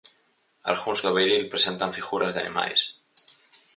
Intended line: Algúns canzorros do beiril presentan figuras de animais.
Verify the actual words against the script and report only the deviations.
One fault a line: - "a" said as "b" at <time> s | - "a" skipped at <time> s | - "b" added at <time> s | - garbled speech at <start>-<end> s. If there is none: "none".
- "canzorros" skipped at 1.0 s